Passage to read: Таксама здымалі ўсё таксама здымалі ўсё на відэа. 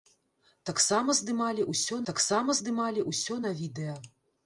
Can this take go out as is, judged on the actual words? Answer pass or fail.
pass